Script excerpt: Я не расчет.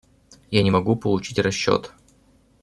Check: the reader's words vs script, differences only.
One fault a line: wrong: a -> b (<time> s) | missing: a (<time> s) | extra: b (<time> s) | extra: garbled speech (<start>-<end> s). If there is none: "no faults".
extra: могу получить (0.7 s)